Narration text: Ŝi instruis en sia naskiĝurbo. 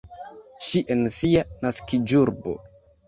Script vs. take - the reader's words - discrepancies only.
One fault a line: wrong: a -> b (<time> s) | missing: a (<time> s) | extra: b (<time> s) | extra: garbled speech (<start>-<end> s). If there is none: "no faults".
missing: instruis (0.8 s)